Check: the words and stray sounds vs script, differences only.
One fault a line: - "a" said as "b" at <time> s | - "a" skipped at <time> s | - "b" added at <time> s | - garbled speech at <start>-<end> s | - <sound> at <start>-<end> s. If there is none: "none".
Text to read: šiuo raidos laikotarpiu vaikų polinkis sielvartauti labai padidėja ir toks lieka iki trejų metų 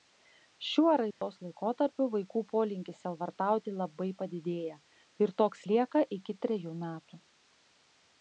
- dropout at 1.1-1.2 s